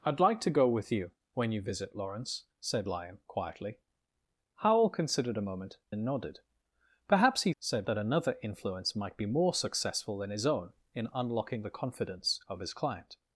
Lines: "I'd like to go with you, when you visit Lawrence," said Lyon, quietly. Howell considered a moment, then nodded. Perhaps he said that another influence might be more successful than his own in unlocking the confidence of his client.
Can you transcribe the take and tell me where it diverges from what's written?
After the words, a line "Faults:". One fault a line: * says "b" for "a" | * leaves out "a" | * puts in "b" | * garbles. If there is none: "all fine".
"I'd like to go with you, when you visit Lawrence," said Lyon, quietly. Howell considered a moment, then nodded. Perhaps he said that another influence might be more successful than his own in unlocking the confidence of his client.
Faults:
all fine